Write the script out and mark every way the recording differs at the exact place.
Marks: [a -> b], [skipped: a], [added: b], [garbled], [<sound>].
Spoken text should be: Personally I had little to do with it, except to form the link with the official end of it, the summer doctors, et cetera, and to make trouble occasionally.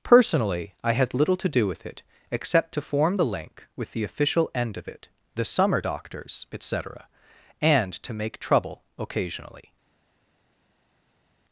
Personally I had little to do with it, except to form the link with the official end of it, the summer doctors, et cetera, and to make trouble occasionally.